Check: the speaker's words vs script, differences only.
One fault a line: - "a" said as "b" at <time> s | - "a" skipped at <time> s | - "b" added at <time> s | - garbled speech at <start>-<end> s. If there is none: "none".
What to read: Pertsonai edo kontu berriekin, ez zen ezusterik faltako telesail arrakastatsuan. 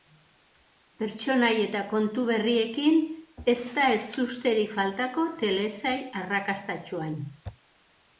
- "edo" said as "eta" at 1.6 s
- "zen" said as "da" at 3.8 s